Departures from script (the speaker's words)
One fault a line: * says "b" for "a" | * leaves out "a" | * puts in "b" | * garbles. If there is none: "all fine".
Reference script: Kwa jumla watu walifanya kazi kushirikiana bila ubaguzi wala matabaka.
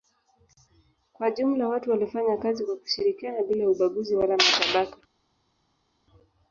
* puts in "kwa"